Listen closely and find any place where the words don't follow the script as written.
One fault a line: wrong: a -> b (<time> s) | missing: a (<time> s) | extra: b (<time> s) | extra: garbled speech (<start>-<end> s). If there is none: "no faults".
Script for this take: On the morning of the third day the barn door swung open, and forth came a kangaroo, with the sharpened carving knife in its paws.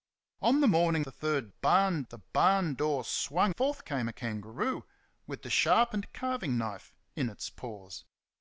missing: of (1.1 s)
wrong: day -> barn (1.5 s)
missing: open and (3.5 s)